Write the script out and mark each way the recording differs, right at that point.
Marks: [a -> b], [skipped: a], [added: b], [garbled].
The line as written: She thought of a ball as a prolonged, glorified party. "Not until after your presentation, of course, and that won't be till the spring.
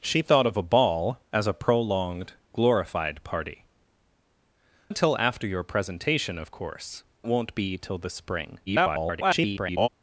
She thought of a ball as a prolonged, glorified party. [skipped: "Not] until after your presentation, of course, [skipped: and that] won't be till the spring. [garbled]